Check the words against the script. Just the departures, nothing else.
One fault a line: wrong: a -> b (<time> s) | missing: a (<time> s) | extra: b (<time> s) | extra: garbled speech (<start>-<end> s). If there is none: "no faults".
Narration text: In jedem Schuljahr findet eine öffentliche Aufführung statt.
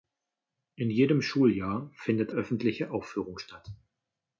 missing: eine (2.3 s)